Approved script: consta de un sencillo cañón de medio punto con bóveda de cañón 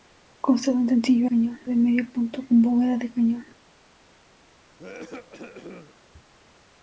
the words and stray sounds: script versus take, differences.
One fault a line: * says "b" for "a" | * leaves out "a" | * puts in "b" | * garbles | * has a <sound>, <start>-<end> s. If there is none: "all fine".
* has a cough, 4.8-5.9 s